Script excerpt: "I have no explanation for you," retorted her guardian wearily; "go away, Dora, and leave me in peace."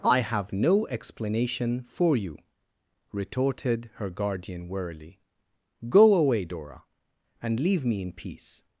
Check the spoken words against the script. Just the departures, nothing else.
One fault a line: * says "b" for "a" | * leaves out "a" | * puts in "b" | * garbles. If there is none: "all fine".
all fine